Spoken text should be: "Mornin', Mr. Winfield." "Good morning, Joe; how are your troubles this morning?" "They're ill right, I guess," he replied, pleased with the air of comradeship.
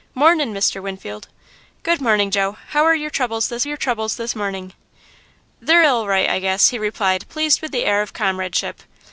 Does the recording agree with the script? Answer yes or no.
no